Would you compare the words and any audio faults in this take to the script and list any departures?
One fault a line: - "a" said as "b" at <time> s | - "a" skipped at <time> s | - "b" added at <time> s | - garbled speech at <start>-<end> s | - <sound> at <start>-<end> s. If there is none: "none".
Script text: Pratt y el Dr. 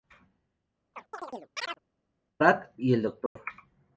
- chirp at 0.9-1.8 s
- dropout at 3.3-3.4 s